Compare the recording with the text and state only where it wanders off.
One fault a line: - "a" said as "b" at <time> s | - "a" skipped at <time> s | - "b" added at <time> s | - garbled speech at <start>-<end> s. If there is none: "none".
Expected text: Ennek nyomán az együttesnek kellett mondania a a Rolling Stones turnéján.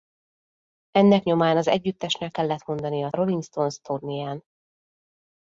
none